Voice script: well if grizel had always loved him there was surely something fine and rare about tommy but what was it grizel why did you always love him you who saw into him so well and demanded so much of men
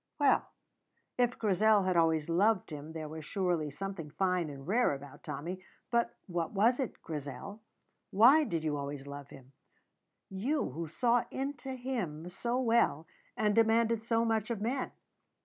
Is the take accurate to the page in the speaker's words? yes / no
yes